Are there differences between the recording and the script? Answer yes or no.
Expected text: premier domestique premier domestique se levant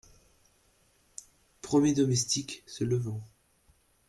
yes